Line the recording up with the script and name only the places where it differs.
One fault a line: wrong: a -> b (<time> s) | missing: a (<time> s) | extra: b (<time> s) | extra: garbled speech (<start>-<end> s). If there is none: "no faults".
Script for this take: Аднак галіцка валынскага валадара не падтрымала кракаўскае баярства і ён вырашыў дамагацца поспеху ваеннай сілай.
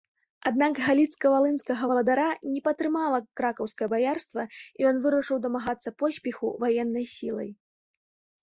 no faults